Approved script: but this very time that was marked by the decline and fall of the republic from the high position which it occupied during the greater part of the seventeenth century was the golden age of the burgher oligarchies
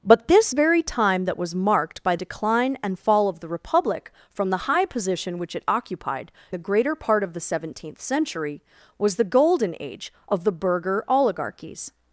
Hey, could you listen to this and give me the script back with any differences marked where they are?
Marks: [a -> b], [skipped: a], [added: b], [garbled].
but this very time that was marked by [skipped: the] decline and fall of the republic from the high position which it occupied [skipped: during] the greater part of the seventeenth century was the golden age of the burgher oligarchies